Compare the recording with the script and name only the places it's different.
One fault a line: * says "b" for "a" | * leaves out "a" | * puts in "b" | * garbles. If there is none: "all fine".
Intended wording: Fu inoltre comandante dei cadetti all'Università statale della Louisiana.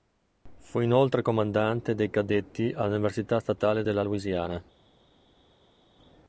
all fine